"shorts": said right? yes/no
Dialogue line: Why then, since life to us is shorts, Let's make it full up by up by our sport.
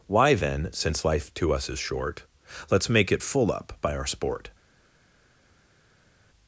no